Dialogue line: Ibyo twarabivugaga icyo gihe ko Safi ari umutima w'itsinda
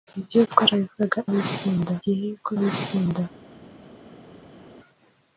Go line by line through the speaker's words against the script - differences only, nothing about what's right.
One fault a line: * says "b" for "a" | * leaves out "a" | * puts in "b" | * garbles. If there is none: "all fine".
* says "w'itsinda" for "icyo"
* leaves out "Safi ari umutima"